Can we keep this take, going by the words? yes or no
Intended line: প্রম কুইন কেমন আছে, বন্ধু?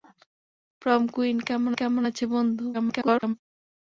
no